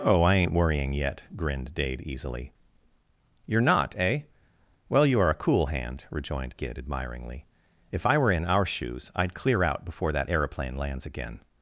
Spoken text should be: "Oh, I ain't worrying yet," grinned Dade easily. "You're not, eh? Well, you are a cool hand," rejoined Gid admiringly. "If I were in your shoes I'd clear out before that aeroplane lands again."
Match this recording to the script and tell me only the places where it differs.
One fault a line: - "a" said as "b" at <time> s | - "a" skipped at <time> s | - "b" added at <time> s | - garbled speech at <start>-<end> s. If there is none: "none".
- "your" said as "our" at 8.5 s